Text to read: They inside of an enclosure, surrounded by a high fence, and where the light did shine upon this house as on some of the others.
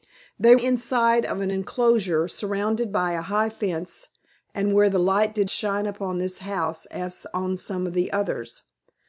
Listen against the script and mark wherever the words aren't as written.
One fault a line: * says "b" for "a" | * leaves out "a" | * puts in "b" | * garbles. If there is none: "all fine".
all fine